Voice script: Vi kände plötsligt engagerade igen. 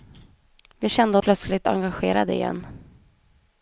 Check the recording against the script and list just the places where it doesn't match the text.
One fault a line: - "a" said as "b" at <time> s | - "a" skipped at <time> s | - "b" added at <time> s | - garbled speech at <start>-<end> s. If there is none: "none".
none